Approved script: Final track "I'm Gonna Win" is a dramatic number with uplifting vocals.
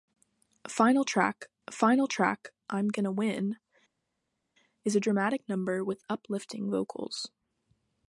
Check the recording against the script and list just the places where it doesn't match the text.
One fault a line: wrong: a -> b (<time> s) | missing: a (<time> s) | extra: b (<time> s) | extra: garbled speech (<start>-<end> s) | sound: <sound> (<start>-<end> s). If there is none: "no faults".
extra: final track (1.7 s)